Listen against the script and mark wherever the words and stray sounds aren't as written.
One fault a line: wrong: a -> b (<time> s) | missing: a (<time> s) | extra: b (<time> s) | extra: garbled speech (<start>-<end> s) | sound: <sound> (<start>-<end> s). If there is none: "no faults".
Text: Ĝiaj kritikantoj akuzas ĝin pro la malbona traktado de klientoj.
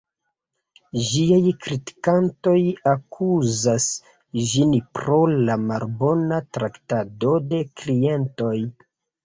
no faults